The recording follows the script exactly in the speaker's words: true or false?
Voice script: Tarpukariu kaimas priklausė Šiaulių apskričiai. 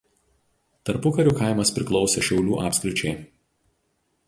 true